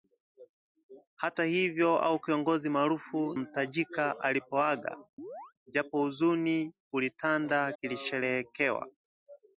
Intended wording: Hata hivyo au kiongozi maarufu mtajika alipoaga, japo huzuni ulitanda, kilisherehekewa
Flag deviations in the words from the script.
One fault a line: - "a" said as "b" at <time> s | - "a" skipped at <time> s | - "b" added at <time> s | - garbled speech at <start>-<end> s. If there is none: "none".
none